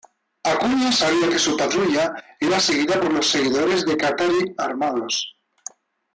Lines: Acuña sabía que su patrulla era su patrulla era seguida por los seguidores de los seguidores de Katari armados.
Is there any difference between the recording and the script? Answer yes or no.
yes